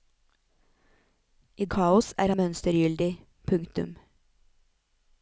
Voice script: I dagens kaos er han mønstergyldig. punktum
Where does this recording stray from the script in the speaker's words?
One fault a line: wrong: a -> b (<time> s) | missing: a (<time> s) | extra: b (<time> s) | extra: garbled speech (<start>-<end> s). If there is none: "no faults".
missing: dagens (1.6 s)
missing: han (2.3 s)